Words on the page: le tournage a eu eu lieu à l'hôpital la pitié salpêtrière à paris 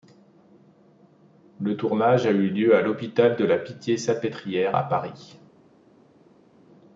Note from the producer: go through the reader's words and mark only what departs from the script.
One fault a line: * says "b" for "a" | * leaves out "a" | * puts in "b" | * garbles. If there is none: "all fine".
* leaves out "eu"
* puts in "de"